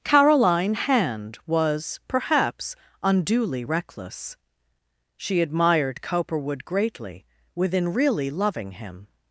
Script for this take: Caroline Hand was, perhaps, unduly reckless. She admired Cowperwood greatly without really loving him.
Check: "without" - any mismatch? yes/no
yes